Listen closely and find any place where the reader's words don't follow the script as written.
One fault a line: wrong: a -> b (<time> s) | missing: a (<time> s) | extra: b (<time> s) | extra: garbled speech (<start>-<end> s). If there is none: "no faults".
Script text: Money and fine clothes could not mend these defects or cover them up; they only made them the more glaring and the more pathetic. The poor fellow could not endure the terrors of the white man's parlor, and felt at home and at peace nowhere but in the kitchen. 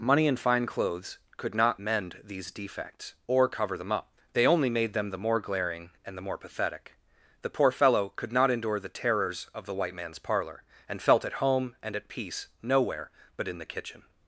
no faults